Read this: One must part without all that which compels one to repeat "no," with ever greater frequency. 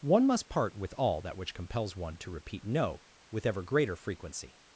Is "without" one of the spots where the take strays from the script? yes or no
yes